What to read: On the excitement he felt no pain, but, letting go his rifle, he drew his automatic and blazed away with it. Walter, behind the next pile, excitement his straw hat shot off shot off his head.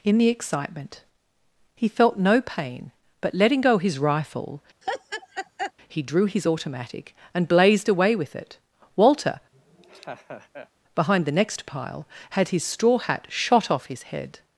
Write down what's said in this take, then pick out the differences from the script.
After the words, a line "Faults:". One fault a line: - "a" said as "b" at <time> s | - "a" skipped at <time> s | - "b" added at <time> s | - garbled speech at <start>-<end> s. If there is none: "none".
In the excitement he felt no pain, but, letting go his rifle, he drew his automatic and blazed away with it. Walter, behind the next pile, had his straw hat shot off his head.
Faults:
- "On" said as "In" at 0.0 s
- "excitement" said as "had" at 12.3 s
- "shot off" skipped at 13.9 s